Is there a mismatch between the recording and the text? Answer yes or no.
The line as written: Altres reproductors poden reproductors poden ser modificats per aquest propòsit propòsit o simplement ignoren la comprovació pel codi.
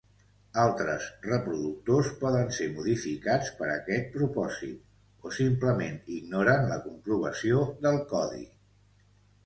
yes